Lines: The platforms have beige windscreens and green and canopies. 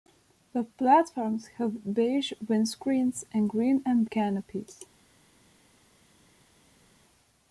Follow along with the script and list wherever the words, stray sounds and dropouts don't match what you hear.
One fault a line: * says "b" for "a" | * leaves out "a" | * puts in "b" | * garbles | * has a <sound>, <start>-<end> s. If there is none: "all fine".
all fine